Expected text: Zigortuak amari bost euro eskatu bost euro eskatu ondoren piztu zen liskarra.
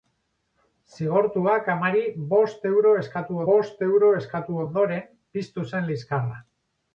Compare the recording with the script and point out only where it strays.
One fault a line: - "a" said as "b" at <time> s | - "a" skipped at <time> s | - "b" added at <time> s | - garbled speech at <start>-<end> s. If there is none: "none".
none